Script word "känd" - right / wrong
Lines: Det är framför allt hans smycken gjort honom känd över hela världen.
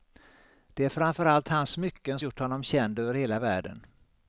right